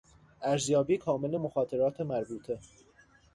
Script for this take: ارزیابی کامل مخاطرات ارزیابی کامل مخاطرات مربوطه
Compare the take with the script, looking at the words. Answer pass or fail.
fail